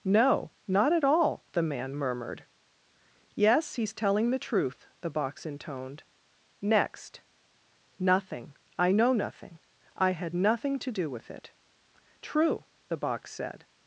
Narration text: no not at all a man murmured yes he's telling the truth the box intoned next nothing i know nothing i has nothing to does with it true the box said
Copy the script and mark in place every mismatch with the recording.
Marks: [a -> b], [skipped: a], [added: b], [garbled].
no not at all [a -> the] man murmured yes he's telling the truth the box intoned next nothing i know nothing i [has -> had] nothing to [does -> do] with it true the box said